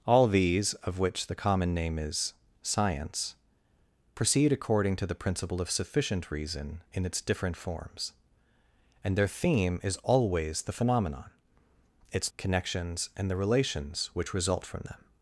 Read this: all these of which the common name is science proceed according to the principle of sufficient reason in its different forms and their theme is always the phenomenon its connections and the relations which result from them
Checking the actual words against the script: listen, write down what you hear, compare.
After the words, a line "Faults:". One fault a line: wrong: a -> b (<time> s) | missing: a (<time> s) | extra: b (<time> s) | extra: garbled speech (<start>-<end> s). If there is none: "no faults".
all these of which the common name is science proceed according to the principle of sufficient reason in its different forms and their theme is always the phenomenon its connections and the relations which result from them
Faults:
no faults